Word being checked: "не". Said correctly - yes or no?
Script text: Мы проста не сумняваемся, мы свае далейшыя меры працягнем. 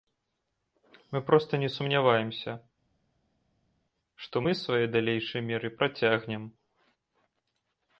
yes